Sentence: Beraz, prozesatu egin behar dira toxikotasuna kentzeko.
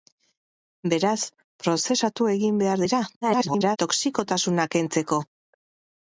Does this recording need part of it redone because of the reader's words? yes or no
yes